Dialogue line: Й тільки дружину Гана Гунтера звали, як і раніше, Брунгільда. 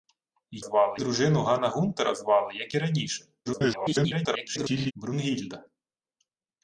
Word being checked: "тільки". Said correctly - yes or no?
no